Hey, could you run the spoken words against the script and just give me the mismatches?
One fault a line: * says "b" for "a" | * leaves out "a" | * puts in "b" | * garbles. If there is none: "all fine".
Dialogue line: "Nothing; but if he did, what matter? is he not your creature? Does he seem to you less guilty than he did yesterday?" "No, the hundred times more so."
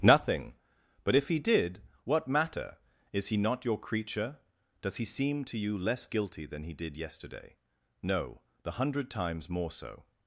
all fine